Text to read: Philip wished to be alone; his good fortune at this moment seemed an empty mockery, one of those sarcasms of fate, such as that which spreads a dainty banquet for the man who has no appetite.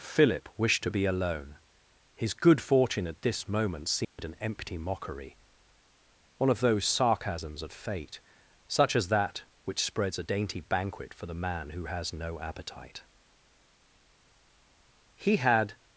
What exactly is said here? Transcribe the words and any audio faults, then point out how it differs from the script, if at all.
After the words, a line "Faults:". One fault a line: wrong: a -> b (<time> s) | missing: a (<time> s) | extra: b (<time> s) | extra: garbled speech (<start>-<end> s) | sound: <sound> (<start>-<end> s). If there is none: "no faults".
Philip wished to be alone; his good fortune at this moment seemed an empty mockery, one of those sarcasms of fate, such as that which spreads a dainty banquet for the man who has no appetite. He had
Faults:
sound: dropout (4.0-4.2 s)
extra: He had (15.1 s)